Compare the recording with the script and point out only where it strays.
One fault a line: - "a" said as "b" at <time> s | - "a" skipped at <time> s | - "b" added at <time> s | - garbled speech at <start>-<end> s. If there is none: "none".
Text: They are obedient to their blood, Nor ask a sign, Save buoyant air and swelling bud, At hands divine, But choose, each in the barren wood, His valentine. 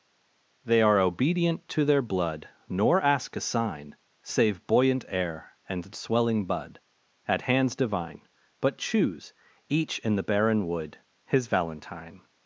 none